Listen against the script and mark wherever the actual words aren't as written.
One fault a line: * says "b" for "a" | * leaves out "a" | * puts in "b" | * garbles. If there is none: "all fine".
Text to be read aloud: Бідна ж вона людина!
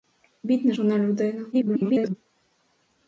* leaves out "ж"
* garbles